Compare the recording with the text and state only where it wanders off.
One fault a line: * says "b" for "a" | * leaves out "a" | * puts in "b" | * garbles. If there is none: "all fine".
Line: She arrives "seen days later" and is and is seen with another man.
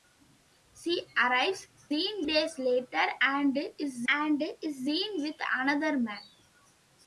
all fine